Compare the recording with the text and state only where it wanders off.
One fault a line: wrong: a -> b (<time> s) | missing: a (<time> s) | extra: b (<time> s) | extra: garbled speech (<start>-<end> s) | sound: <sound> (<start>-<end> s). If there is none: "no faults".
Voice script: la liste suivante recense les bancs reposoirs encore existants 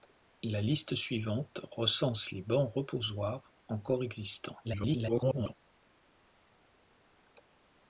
extra: garbled speech (4.6-5.5 s)